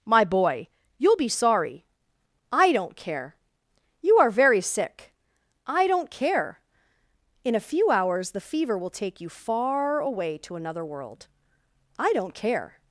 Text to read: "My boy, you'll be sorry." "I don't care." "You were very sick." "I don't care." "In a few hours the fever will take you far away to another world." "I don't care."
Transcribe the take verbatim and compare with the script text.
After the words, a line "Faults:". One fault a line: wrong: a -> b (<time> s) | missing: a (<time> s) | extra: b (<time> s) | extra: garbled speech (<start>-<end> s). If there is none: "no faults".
"My boy, you'll be sorry." "I don't care." "You are very sick." "I don't care." "In a few hours the fever will take you far away to another world." "I don't care."
Faults:
wrong: were -> are (4.2 s)